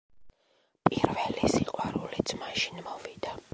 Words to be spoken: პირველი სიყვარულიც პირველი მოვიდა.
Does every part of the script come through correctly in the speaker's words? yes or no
no